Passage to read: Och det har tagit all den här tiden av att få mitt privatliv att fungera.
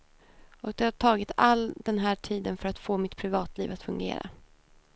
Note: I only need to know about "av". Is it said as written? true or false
false